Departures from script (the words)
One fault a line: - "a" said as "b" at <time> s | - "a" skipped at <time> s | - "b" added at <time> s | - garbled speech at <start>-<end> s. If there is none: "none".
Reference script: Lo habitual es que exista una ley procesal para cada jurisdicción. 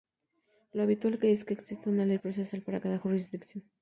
none